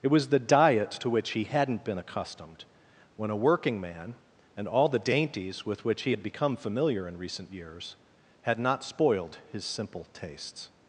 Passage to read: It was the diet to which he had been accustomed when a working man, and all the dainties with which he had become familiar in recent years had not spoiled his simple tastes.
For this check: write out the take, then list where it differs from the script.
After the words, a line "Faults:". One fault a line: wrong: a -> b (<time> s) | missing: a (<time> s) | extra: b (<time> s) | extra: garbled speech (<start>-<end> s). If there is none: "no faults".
It was the diet to which he hadn't been accustomed when a working man, and all the dainties with which he had become familiar in recent years had not spoiled his simple tastes.
Faults:
wrong: had -> hadn't (1.4 s)